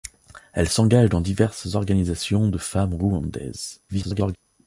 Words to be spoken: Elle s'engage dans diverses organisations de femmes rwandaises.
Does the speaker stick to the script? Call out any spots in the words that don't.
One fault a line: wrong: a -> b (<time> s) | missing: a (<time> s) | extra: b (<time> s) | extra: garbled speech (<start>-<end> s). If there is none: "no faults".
extra: garbled speech (3.9-4.4 s)